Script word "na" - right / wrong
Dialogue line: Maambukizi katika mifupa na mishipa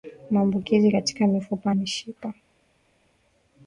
wrong